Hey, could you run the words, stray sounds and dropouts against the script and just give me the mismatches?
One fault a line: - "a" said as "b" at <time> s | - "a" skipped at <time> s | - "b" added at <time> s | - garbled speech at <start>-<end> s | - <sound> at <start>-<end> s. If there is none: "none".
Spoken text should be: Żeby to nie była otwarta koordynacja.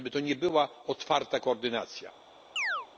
- chirp at 2.6-2.9 s